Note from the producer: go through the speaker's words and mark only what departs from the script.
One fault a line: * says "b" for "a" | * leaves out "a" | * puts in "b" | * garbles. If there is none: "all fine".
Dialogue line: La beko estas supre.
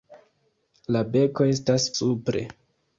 all fine